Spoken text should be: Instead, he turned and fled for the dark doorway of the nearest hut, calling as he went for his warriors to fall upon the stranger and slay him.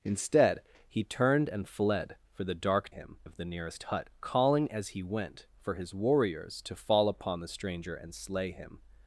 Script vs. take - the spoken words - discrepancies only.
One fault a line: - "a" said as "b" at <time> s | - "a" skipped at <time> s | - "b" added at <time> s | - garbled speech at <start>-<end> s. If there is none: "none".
- "doorway" said as "him" at 2.9 s